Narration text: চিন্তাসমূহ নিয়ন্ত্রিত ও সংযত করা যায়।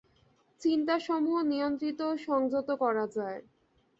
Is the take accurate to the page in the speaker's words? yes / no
yes